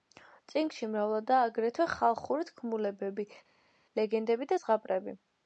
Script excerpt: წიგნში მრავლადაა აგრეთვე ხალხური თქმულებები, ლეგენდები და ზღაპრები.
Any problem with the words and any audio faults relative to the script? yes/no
no